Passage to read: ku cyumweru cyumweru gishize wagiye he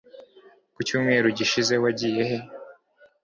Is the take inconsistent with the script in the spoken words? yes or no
yes